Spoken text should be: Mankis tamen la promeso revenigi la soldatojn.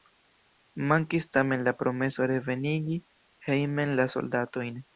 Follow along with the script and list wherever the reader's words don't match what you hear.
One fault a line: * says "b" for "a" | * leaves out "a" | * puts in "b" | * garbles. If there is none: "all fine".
* puts in "hejmen"